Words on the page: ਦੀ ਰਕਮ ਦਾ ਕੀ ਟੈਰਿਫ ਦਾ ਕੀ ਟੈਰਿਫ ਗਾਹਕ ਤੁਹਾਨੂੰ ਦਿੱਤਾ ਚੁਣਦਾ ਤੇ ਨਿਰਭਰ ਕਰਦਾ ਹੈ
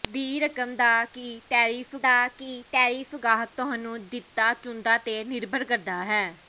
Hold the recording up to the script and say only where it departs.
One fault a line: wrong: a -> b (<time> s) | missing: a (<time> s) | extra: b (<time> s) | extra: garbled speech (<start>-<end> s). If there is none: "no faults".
no faults